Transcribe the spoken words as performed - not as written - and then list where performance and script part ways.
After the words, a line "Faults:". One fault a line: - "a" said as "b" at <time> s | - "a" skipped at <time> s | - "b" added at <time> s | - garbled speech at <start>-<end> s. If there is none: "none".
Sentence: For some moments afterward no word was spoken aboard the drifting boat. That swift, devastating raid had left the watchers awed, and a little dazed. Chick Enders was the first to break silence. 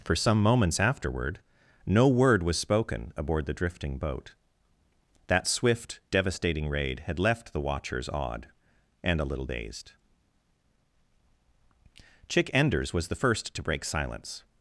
For some moments afterward no word was spoken aboard the drifting boat. That swift, devastating raid had left the watchers awed, and a little dazed. Chick Enders was the first to break silence.
Faults:
none